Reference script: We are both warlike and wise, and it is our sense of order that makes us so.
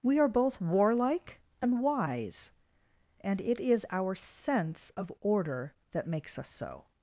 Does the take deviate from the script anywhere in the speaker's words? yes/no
no